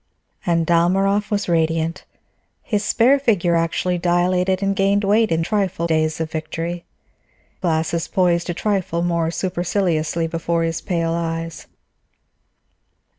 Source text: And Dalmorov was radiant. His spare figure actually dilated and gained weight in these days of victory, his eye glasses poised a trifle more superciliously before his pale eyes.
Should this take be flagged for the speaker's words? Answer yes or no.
yes